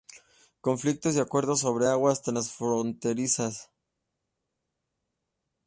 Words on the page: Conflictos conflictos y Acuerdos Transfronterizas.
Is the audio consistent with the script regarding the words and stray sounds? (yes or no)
no